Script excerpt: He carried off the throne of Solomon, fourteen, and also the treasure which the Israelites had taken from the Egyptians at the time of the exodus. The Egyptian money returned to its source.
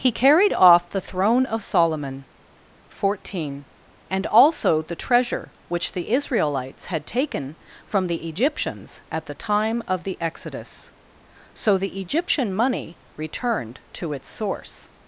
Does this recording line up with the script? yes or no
no